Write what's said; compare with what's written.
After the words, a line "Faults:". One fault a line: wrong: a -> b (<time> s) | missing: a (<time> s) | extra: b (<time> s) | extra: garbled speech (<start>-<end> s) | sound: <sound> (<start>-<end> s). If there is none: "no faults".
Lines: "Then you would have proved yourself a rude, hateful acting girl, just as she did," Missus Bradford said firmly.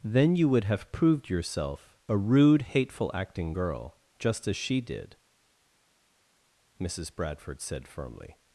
"Then you would have proved yourself a rude, hateful acting girl, just as she did," Missus Bradford said firmly.
Faults:
no faults